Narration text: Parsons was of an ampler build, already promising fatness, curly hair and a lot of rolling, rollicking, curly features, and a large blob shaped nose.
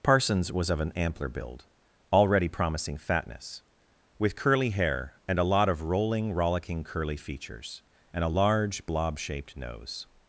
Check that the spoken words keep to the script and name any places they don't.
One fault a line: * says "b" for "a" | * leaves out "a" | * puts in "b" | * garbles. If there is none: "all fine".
* puts in "with"